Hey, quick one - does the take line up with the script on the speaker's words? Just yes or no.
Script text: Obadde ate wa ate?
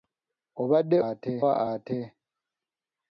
yes